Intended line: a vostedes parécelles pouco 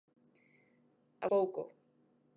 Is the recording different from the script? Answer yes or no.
yes